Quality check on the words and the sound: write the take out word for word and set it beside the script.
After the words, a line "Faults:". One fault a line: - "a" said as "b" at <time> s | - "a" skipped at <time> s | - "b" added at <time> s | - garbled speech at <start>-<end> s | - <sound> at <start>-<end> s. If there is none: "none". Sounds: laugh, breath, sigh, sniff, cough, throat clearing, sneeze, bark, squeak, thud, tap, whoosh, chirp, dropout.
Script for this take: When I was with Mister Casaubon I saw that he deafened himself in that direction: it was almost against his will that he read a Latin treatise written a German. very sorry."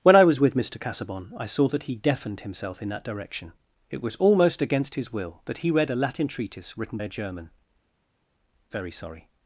When I was with Mister Casaubon I saw that he deafened himself in that direction: it was almost against his will that he read a Latin treatise written a German. very sorry."
Faults:
none